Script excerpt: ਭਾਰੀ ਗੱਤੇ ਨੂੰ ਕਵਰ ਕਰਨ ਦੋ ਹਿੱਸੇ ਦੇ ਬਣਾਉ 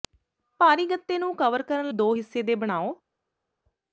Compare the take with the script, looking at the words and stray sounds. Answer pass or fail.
pass